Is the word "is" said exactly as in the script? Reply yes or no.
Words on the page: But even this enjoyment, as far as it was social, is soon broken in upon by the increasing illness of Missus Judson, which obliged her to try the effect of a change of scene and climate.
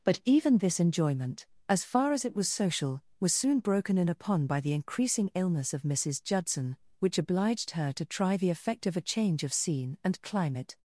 no